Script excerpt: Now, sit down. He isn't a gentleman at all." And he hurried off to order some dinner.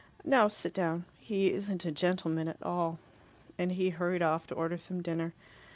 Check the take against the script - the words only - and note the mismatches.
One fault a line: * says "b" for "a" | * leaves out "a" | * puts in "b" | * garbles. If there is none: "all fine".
all fine